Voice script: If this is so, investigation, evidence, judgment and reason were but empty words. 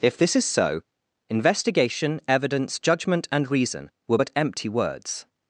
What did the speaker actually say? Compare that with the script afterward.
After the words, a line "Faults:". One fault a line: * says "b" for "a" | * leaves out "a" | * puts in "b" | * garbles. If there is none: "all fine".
If this is so, investigation, evidence, judgment and reason were but empty words.
Faults:
all fine